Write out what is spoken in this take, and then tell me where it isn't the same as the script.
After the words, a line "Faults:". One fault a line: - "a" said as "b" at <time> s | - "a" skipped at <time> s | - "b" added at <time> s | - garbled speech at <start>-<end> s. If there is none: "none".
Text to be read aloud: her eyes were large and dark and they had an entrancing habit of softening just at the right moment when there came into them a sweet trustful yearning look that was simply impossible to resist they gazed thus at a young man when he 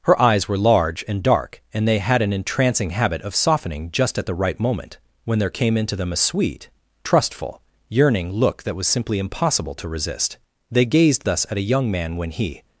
her eyes were large and dark and they had an entrancing habit of softening just at the right moment when there came into them a sweet trustful yearning look that was simply impossible to resist they gazed thus at a young man when he
Faults:
none